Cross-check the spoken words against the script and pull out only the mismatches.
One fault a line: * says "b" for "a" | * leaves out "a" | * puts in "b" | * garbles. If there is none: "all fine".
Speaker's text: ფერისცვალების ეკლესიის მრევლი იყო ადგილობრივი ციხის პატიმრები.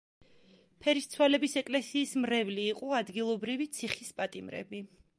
all fine